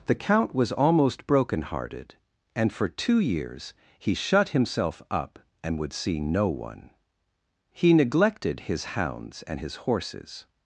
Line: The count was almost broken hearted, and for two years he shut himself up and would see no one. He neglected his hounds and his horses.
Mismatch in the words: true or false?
false